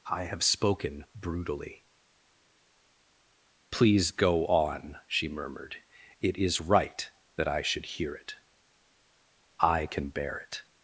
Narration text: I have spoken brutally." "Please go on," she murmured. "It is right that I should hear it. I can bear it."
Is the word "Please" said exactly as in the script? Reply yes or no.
yes